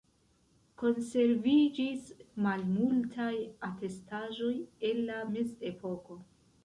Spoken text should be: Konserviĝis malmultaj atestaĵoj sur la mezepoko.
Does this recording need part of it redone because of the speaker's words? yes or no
yes